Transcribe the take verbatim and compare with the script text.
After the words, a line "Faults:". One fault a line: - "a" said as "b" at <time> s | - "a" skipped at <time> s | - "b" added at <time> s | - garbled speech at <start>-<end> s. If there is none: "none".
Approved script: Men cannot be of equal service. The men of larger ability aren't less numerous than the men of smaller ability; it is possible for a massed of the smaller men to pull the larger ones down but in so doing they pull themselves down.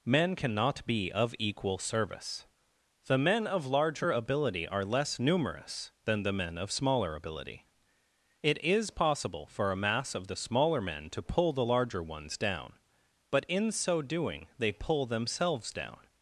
Men cannot be of equal service. The men of larger ability are less numerous than the men of smaller ability; it is possible for a mass of the smaller men to pull the larger ones down but in so doing they pull themselves down.
Faults:
- "aren't" said as "are" at 4.7 s
- "massed" said as "mass" at 9.8 s